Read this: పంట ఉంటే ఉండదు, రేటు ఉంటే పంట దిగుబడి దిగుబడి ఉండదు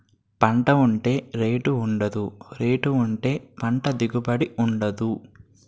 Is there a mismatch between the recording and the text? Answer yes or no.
yes